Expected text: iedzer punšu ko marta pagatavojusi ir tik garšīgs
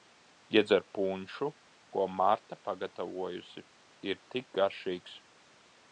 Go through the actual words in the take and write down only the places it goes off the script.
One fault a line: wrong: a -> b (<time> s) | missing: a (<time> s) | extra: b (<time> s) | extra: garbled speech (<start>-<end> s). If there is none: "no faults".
no faults